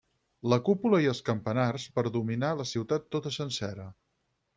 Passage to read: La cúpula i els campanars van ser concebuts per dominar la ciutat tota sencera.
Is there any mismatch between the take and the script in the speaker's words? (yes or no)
yes